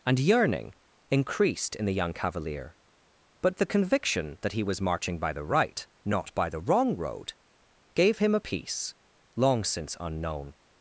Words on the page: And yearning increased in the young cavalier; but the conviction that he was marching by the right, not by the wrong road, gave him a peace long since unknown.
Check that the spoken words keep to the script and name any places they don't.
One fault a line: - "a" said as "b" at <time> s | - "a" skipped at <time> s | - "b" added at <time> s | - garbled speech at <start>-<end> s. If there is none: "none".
none